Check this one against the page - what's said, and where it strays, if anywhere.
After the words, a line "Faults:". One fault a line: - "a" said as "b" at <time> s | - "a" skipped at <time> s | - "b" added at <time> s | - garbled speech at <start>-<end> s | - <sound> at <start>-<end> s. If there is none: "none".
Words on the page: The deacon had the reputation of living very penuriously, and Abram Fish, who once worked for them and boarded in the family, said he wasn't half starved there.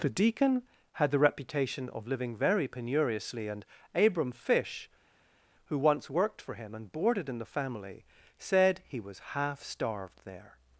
The deacon had the reputation of living very penuriously, and Abram Fish, who once worked for him and boarded in the family, said he was half starved there.
Faults:
- "them" said as "him" at 6.5 s
- "wasn't" said as "was" at 9.0 s